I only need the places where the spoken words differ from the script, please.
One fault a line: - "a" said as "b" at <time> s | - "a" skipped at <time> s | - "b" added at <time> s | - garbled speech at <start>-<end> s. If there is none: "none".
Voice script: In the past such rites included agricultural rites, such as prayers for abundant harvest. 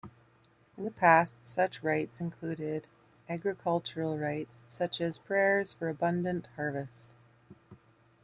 none